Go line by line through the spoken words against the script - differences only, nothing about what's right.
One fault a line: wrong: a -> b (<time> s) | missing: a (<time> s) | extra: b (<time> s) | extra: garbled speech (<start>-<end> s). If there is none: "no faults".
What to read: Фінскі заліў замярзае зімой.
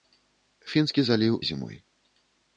missing: замярзае (1.4 s)